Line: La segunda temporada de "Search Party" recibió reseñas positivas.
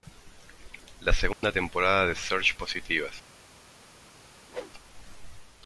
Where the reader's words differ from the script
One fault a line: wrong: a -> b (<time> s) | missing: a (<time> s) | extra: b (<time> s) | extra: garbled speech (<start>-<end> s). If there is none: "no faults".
missing: Party recibió reseñas (2.5 s)